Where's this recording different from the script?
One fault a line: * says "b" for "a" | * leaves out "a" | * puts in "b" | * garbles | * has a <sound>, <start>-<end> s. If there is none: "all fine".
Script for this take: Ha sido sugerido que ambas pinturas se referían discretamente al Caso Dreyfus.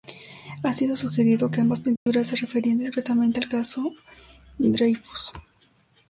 * has a dropout, 2.0-2.1 s